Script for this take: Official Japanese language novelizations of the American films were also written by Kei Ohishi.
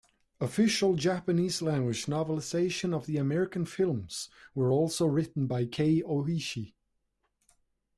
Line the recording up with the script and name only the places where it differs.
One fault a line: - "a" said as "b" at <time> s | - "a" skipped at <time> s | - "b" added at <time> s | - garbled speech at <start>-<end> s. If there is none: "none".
none